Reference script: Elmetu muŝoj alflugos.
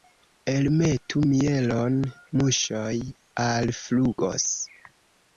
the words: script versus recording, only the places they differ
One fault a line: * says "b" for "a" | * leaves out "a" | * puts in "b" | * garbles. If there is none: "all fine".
* puts in "mielon"